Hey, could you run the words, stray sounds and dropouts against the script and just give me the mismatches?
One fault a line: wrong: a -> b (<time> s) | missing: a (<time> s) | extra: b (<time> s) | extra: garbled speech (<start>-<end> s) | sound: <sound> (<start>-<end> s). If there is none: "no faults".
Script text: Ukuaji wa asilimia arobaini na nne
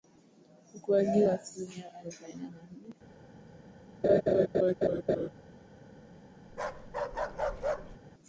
sound: laugh (4.0-5.3 s)
sound: bark (6.5-8.0 s)